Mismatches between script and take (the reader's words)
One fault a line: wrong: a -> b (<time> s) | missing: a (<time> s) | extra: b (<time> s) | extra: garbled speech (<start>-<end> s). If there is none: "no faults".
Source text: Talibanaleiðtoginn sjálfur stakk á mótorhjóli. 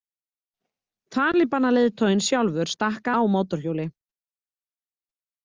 no faults